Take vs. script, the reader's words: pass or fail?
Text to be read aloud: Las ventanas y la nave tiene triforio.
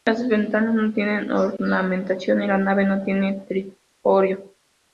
fail